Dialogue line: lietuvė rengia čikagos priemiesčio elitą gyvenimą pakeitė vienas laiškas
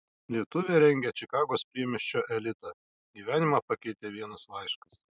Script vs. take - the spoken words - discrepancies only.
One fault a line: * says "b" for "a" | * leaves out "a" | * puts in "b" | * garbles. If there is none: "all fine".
all fine